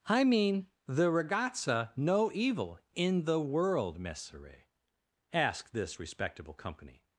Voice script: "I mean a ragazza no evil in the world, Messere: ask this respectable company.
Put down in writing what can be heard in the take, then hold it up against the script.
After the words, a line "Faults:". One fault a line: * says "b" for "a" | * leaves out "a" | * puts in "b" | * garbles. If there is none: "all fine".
"I mean the ragazza no evil in the world, Messere: ask this respectable company.
Faults:
* says "the" for "a"